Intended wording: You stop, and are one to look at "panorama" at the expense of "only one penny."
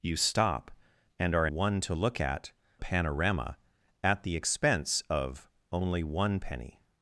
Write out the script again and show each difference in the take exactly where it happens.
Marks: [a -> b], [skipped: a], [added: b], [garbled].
You stop, and are one to look at "panorama" at the expense of "only one penny."